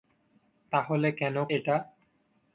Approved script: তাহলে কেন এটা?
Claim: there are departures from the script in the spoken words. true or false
false